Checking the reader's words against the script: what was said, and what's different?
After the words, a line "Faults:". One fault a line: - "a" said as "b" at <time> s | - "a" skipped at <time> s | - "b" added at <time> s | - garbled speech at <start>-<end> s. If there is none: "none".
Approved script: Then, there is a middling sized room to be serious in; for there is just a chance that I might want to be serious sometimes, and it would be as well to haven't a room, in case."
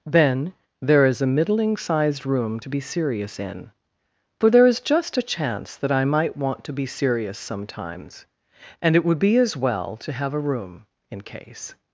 Then, there is a middling sized room to be serious in; for there is just a chance that I might want to be serious sometimes, and it would be as well to have a room, in case."
Faults:
- "haven't" said as "have" at 10.1 s